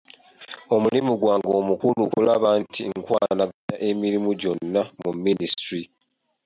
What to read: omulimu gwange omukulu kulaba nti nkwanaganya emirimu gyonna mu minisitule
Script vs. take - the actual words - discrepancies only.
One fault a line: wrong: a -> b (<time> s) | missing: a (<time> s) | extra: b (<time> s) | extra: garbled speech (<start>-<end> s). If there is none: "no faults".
no faults